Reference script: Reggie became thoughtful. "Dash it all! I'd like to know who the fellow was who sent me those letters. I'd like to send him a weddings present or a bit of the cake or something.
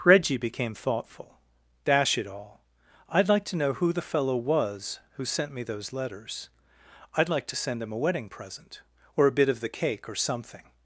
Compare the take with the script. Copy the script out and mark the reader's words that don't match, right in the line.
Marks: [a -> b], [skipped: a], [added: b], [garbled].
Reggie became thoughtful. "Dash it all! I'd like to know who the fellow was who sent me those letters. I'd like to send him a [weddings -> wedding] present or a bit of the cake or something.